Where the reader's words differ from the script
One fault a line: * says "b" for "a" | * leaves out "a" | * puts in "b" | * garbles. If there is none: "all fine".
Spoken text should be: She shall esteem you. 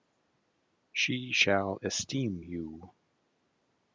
all fine